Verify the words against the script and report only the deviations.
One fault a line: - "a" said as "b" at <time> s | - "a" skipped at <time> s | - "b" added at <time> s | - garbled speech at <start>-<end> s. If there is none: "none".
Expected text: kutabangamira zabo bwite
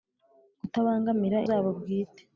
none